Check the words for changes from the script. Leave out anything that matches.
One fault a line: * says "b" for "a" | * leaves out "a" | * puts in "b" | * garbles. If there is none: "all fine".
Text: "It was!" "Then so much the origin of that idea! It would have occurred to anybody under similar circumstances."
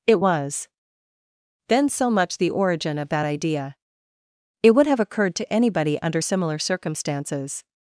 all fine